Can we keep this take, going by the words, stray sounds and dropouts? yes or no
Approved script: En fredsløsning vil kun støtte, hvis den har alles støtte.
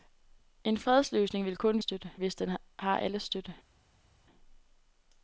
yes